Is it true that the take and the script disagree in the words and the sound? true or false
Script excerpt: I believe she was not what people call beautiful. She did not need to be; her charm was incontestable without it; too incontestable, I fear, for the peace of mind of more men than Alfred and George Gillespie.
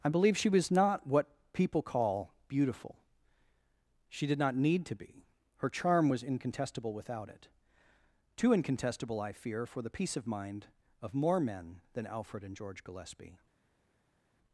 false